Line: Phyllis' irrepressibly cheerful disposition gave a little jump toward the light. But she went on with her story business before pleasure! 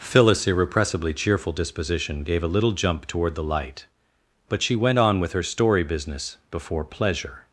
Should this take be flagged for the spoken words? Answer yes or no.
no